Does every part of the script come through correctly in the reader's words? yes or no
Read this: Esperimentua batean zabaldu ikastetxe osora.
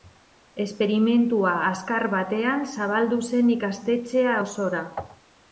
no